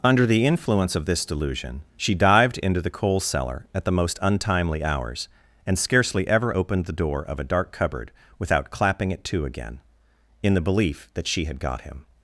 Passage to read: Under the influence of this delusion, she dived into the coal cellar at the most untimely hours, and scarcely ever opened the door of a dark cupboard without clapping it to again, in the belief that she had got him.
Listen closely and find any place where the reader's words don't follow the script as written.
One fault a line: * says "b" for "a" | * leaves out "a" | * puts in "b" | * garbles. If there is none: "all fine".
all fine